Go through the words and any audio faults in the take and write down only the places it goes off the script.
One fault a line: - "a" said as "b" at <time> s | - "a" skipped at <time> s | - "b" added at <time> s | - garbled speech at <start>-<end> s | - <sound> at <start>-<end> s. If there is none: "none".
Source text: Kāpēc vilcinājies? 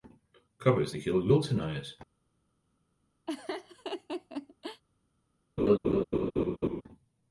- "tik ilgi" added at 0.9 s
- laugh at 3.3-4.8 s
- laugh at 5.6-6.8 s